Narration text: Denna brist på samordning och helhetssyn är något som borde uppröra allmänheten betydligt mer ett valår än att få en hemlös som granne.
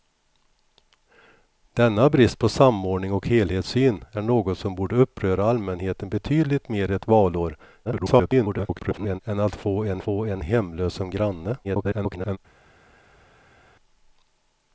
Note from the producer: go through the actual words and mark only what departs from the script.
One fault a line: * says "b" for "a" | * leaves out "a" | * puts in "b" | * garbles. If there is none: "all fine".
* garbles
* puts in "få en"
* garbles